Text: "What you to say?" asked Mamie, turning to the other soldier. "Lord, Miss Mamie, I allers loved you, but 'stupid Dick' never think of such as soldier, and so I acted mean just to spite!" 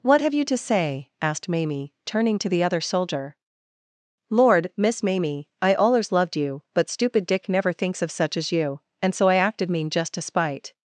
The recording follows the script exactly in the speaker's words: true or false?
false